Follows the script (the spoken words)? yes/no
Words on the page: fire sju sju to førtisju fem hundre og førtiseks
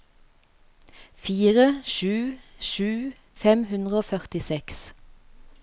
no